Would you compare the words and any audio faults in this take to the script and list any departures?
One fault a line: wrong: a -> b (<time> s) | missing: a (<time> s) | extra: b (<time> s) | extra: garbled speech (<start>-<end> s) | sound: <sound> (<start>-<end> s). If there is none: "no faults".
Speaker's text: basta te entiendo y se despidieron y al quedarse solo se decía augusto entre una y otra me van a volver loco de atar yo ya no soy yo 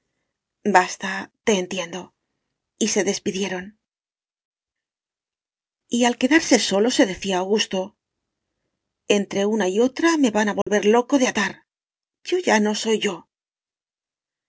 sound: dropout (10.6-10.7 s)